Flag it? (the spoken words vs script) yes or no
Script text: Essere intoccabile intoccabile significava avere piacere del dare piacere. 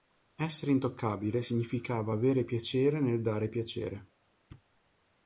yes